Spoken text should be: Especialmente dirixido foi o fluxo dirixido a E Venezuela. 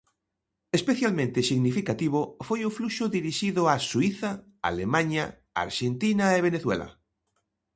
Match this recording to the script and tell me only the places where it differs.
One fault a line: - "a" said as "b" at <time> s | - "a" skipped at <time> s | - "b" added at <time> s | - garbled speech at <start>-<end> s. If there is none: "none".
- "dirixido" said as "significativo" at 1.5 s
- "Suíza Alemaña Arxentina" added at 3.9 s